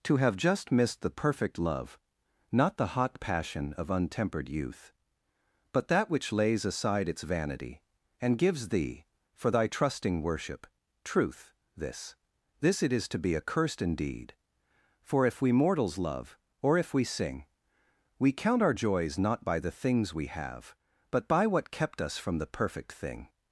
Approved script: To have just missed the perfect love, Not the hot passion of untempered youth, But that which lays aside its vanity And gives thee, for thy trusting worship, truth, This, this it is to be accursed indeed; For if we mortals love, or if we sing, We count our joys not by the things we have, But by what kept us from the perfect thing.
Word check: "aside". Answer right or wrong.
right